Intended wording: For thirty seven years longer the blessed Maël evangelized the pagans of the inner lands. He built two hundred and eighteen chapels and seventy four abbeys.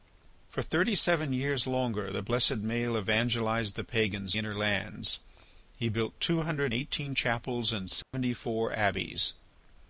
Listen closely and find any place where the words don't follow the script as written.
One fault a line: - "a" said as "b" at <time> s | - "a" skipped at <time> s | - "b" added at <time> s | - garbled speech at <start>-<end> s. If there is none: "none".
- "of the" skipped at 4.3 s
- "and" skipped at 6.7 s